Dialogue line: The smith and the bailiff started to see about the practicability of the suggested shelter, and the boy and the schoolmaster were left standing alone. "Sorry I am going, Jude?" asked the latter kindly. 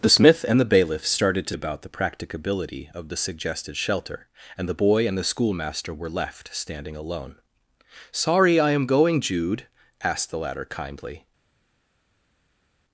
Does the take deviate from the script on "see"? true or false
true